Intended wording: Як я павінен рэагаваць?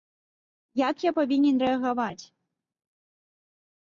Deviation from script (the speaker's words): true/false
false